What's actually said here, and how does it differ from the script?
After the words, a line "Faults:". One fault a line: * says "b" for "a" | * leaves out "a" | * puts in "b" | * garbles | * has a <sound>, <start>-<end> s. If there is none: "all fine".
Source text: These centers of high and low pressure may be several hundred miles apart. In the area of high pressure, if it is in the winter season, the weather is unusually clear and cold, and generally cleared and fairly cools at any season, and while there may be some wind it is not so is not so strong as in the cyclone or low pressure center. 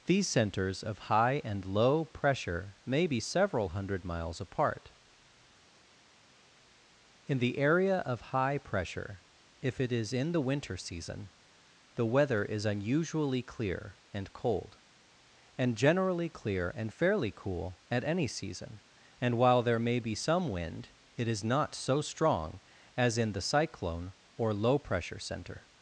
These centers of high and low pressure may be several hundred miles apart. In the area of high pressure, if it is in the winter season, the weather is unusually clear and cold, and generally clear and fairly cool at any season, and while there may be some wind it is not so strong as in the cyclone or low pressure center.
Faults:
* says "clear" for "cleared"
* says "cool" for "cools"
* leaves out "is not so"